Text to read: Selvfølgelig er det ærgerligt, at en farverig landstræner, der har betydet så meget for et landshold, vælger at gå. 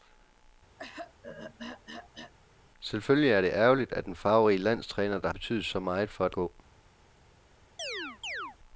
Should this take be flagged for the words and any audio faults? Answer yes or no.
yes